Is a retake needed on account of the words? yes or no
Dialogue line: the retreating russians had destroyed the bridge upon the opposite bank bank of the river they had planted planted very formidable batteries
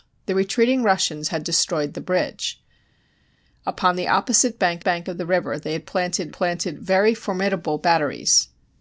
no